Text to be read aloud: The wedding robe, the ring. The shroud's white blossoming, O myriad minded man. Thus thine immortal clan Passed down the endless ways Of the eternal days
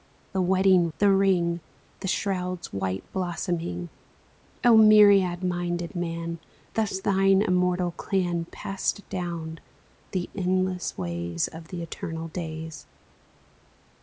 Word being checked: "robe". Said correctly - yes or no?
no